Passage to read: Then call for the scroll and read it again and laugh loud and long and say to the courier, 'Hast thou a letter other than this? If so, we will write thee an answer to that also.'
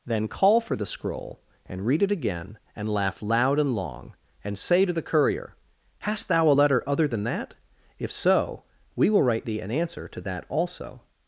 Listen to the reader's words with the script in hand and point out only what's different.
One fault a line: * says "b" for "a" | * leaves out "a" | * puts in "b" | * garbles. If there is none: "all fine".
* says "that" for "this"